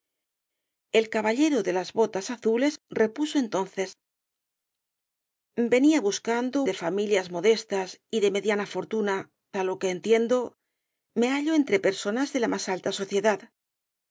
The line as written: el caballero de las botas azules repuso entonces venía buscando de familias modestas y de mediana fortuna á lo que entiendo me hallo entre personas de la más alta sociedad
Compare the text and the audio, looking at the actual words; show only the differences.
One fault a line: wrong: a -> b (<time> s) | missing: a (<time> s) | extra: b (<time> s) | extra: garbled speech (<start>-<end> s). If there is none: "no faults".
no faults